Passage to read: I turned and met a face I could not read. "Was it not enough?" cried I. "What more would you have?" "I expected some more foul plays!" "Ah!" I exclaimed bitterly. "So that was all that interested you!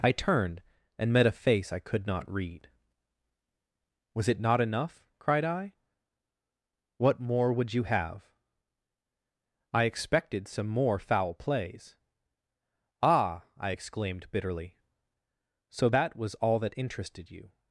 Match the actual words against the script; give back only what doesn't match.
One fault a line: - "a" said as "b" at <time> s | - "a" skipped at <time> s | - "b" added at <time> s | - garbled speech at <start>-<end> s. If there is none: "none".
none